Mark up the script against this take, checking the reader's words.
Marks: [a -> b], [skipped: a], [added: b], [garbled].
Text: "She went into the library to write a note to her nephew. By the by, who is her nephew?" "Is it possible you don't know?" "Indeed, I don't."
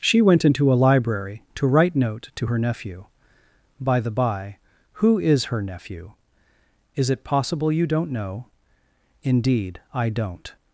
"She went into [the -> a] library to write [skipped: a] note to her nephew. By the by, who is her nephew?" "Is it possible you don't know?" "Indeed, I don't."